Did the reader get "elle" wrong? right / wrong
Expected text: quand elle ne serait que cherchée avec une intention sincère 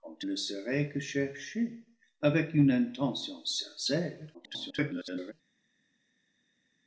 wrong